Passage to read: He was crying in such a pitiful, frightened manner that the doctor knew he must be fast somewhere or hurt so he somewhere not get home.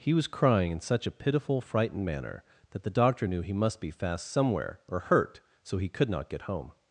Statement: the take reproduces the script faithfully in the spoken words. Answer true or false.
false